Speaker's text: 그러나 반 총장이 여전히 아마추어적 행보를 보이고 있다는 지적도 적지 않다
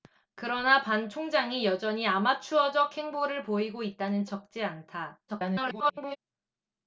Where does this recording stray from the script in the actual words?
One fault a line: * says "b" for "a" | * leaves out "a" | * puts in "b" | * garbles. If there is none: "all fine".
* leaves out "지적도"
* garbles